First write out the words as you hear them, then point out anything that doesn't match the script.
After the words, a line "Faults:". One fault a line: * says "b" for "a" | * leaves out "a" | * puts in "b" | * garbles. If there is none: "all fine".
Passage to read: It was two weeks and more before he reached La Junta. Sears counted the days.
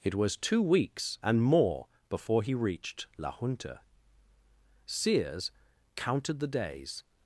It was two weeks and more before he reached La Junta. Sears counted the days.
Faults:
all fine